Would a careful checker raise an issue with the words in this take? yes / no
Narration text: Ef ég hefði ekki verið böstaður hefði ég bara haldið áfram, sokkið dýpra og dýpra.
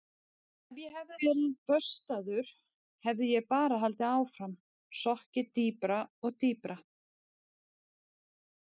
yes